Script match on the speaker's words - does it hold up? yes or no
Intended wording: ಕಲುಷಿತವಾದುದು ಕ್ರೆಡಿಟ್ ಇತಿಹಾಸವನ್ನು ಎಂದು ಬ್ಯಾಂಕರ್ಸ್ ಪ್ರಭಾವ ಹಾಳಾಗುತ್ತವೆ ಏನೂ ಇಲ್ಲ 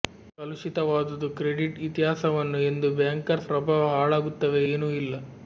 yes